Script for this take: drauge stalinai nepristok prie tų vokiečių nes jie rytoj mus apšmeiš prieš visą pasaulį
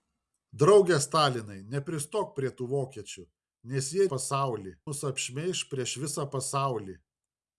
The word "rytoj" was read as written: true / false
false